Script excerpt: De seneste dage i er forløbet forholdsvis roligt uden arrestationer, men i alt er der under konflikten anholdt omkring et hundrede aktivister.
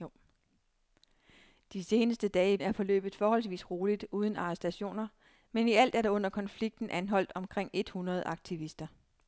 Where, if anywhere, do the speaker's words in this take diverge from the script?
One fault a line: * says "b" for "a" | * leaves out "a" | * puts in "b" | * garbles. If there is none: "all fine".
all fine